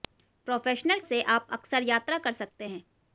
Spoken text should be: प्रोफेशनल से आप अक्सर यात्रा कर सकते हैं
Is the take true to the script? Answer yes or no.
yes